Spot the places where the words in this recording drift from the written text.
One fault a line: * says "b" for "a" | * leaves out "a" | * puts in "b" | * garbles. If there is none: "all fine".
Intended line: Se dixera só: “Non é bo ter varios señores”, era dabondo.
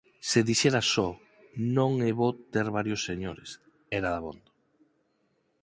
all fine